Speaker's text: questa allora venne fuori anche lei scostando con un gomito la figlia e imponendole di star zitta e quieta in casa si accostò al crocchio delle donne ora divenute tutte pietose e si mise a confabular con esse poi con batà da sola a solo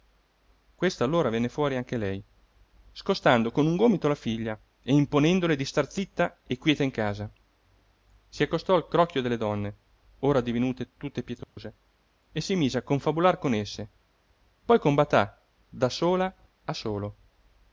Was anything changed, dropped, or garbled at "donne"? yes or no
no